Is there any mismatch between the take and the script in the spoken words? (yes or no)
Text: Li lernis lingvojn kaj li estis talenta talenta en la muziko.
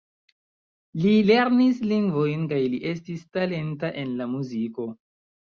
yes